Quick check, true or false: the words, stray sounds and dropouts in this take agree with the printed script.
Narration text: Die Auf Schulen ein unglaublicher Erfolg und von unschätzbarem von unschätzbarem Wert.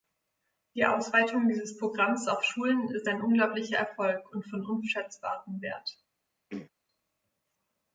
false